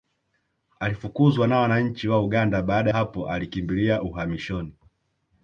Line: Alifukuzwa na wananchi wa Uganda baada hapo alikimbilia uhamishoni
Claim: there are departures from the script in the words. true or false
false